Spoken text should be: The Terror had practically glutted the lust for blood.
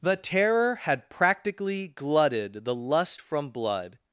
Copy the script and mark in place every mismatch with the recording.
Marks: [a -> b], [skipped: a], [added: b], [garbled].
The Terror had practically glutted the lust [for -> from] blood.